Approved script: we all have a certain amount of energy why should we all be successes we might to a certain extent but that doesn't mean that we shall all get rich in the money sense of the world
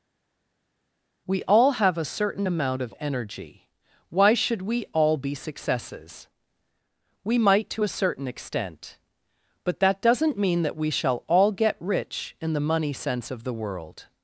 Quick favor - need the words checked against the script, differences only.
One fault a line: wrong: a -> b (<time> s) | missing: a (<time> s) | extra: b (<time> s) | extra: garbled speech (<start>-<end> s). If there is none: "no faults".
no faults